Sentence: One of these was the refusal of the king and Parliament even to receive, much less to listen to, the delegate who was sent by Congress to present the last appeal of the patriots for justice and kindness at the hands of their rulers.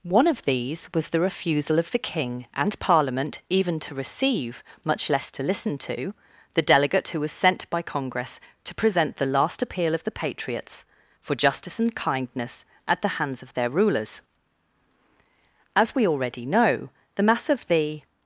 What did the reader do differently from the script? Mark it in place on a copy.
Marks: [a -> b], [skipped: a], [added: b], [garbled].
One of these was the refusal of the king and Parliament even to receive, much less to listen to, the delegate who was sent by Congress to present the last appeal of the patriots for justice and kindness at the hands of their rulers. [added: As we already know the mass of the]